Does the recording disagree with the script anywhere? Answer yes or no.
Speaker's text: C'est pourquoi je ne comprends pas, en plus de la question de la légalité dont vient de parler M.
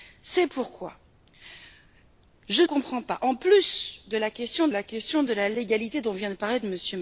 yes